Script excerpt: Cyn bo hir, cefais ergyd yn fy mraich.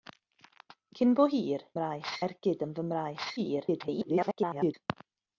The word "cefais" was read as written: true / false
false